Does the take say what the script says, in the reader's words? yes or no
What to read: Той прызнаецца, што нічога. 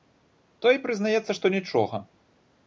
yes